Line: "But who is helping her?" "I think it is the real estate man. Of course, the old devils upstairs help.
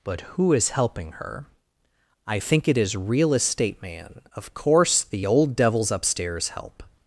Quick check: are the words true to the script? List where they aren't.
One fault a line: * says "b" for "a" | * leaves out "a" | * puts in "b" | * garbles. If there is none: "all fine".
* leaves out "the"